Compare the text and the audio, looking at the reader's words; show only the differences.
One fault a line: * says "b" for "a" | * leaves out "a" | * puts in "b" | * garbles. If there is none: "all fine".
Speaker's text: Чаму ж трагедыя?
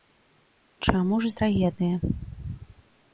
all fine